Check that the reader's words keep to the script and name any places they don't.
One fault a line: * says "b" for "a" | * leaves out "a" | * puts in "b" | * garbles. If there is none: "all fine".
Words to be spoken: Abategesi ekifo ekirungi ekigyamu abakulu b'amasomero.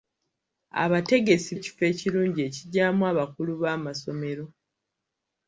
all fine